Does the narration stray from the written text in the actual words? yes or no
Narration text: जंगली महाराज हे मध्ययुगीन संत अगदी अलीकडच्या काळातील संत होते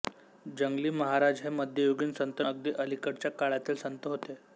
no